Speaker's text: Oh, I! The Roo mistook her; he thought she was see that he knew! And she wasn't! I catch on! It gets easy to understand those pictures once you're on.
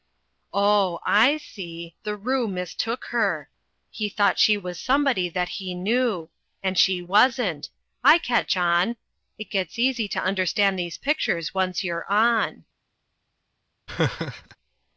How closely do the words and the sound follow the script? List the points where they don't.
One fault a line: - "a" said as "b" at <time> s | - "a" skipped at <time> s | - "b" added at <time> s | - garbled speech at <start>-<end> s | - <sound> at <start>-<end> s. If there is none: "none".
- "see" added at 1.4 s
- "see" said as "somebody" at 4.8 s
- "those" said as "these" at 10.8 s
- laugh at 13.9-14.6 s